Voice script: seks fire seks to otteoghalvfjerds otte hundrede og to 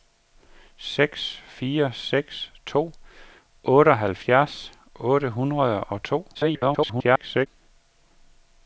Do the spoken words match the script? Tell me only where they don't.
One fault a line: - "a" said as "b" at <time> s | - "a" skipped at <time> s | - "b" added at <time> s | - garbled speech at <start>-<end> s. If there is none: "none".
- garbled speech at 6.3-7.5 s